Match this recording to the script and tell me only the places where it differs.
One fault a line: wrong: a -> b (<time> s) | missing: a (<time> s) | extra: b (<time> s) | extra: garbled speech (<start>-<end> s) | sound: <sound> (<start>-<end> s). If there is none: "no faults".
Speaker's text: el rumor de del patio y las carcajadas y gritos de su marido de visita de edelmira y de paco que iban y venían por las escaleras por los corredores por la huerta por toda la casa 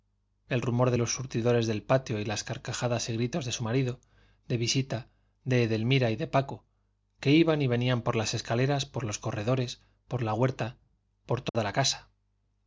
extra: los surtidores (1.0 s)
sound: dropout (11.5-11.5 s)